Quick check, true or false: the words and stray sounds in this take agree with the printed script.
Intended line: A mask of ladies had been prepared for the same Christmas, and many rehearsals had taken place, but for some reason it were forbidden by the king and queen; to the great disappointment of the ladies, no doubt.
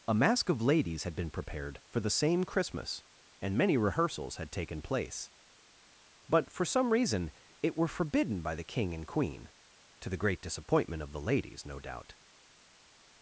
true